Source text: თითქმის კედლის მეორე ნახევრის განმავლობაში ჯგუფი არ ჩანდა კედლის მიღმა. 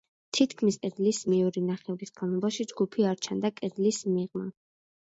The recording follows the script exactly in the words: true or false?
true